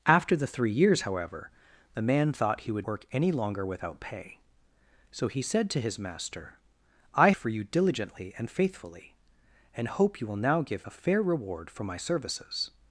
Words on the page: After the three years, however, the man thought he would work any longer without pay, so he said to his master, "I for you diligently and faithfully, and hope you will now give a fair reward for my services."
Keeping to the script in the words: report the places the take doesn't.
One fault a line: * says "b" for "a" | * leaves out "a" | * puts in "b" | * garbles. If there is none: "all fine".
all fine